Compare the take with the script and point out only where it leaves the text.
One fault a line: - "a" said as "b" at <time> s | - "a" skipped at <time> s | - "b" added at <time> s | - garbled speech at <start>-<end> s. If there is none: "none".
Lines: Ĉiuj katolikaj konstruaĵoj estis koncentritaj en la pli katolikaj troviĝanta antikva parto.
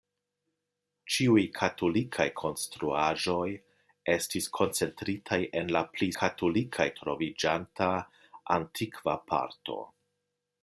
none